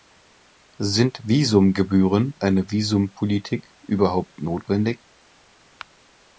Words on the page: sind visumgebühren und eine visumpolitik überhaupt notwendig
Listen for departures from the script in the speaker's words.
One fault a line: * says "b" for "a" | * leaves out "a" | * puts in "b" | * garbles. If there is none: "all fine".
* leaves out "und"